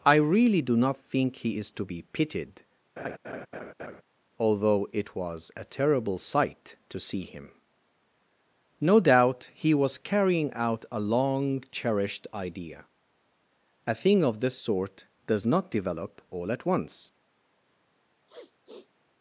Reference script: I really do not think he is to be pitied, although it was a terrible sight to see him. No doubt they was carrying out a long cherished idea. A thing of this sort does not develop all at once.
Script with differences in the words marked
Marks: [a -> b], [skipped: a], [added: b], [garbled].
I really do not think he is to be pitied, although it was a terrible sight to see him. No doubt [they -> he] was carrying out a long cherished idea. A thing of this sort does not develop all at once.